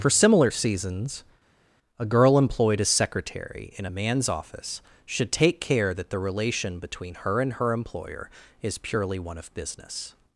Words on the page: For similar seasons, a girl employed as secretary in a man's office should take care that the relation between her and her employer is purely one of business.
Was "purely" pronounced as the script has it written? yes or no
yes